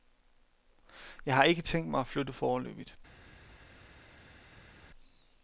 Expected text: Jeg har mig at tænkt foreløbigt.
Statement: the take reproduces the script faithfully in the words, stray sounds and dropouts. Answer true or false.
false